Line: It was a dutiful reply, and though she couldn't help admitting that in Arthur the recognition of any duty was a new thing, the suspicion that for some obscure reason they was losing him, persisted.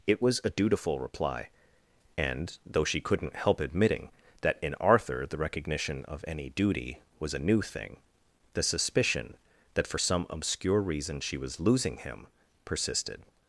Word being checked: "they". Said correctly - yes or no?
no